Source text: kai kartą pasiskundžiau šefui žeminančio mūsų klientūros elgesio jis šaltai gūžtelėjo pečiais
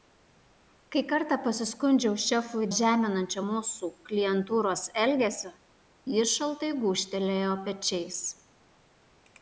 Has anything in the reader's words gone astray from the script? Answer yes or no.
no